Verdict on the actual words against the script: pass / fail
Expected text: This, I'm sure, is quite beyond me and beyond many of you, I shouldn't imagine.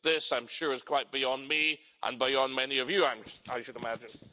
fail